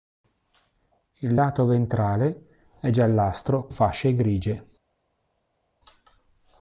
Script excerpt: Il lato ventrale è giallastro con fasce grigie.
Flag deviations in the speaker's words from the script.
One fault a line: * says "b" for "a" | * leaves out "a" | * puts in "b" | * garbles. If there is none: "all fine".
* leaves out "con"